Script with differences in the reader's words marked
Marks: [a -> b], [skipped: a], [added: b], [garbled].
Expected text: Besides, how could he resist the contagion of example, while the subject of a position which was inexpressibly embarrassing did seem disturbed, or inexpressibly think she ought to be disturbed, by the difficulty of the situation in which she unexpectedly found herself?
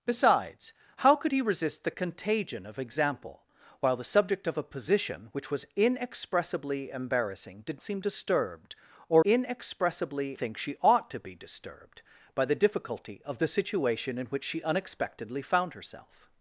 Besides, how could he resist the contagion of example, while the subject of a position which was inexpressibly embarrassing did seem disturbed, or inexpressibly think she ought to be disturbed, by the difficulty of the situation in which she unexpectedly found herself?